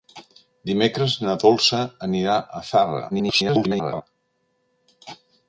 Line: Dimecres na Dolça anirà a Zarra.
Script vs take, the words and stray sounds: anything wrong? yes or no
yes